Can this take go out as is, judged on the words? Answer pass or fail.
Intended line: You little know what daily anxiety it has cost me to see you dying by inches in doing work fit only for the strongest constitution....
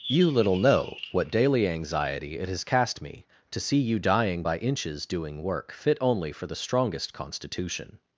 fail